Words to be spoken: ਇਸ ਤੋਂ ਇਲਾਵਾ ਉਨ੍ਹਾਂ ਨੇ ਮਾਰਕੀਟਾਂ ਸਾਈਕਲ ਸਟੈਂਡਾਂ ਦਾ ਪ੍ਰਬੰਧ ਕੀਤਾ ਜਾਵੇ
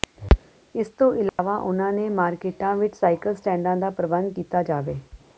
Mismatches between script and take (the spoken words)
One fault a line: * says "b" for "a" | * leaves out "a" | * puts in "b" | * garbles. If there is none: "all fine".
* puts in "ਵਿੱਚ"